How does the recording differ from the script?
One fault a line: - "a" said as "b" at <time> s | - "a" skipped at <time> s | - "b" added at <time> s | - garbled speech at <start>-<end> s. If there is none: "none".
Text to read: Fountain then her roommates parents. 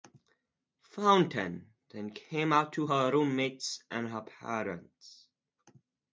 - "came out to" added at 2.1 s
- "and her" added at 3.9 s